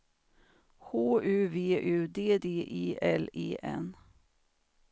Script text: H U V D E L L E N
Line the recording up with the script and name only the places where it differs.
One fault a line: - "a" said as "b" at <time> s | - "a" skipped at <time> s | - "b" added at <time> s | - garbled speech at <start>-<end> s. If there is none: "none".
- "U" added at 1.8 s
- "D" added at 2.3 s
- "L" skipped at 3.3 s